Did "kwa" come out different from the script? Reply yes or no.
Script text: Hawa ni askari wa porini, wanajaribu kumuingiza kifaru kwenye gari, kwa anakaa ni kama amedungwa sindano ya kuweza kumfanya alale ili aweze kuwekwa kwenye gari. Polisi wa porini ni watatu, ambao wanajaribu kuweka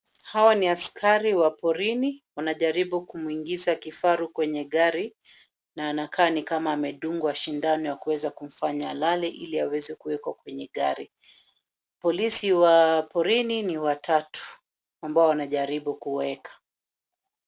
yes